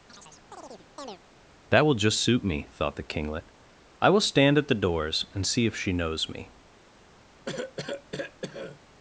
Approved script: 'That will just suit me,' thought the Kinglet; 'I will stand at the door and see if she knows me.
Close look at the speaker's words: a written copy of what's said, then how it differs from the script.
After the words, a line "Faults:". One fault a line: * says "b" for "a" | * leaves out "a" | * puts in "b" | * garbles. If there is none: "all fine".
'That will just suit me,' thought the Kinglet; 'I will stand at the doors and see if she knows me.
Faults:
* says "doors" for "door"